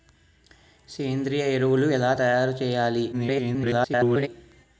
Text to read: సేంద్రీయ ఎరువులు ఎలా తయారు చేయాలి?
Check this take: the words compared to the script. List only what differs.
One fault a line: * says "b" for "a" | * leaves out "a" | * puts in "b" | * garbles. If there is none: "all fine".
* garbles